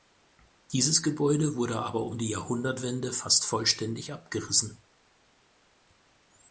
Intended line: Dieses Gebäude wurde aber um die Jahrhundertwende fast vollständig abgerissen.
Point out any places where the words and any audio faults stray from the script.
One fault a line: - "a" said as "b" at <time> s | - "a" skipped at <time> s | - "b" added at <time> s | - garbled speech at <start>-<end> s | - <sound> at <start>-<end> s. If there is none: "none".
none